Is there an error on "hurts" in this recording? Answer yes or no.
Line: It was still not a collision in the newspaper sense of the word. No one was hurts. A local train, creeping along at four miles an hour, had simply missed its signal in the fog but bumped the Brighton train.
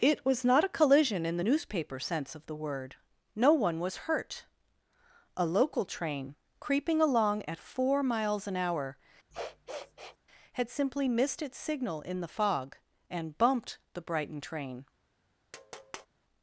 yes